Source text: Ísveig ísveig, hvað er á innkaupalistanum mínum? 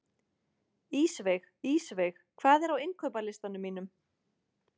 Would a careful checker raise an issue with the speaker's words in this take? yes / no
no